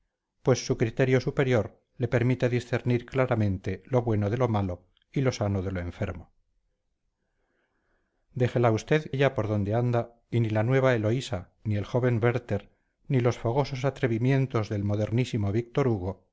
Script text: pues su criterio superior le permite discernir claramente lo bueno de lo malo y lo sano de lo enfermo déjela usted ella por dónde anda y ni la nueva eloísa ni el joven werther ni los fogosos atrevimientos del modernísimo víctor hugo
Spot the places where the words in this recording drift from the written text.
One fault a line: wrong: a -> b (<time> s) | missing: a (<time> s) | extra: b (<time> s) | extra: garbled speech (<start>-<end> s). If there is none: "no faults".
no faults